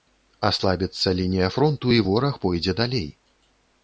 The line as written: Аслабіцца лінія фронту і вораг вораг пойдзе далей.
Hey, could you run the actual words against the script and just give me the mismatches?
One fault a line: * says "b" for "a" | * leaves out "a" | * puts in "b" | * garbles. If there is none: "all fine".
* leaves out "вораг"